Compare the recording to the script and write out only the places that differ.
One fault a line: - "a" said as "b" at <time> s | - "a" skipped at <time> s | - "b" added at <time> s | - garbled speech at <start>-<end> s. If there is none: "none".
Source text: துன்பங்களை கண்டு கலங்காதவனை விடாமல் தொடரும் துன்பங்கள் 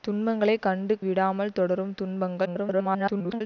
- "கலங்காதவனை" skipped at 0.9 s
- garbled speech at 2.4-3.4 s